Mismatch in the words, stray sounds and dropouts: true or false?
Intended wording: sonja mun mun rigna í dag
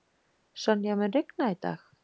true